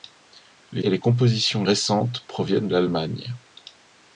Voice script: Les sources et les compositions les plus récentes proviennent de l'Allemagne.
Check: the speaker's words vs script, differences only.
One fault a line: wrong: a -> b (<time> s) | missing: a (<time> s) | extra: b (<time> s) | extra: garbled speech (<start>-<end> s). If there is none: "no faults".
missing: sources (0.8 s)
missing: les plus (1.6 s)
missing: de (2.7 s)